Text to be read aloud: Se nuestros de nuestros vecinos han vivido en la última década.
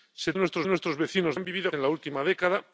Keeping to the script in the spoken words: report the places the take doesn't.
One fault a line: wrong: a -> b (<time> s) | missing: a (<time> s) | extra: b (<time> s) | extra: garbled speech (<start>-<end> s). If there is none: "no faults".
no faults